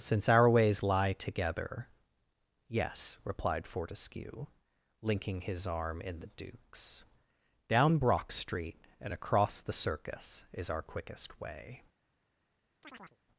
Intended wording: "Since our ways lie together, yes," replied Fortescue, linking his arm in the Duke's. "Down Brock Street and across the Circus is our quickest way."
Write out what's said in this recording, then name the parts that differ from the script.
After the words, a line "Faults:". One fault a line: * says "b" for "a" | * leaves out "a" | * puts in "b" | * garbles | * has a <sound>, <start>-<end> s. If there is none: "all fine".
"Since our ways lie together, yes," replied Fortescue, linking his arm in the Duke's. "Down Brock Street and across the Circus is our quickest way."
Faults:
* has a chirp, 12.8-13.2 s